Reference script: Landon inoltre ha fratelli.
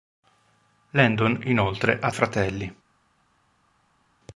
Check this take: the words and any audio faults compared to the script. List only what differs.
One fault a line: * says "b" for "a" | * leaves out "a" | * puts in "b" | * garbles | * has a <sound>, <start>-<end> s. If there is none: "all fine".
all fine